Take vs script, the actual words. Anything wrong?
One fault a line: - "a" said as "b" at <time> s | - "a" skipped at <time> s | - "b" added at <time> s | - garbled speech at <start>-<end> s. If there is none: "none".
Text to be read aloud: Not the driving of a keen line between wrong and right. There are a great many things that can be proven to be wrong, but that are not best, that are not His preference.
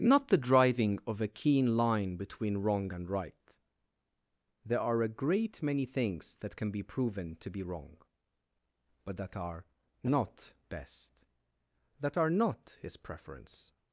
none